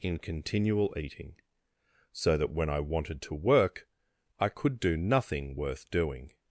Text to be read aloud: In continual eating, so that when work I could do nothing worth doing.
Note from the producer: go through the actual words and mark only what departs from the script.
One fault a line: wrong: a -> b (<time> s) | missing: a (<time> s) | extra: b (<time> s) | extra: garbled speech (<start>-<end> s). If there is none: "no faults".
extra: I wanted to (2.7 s)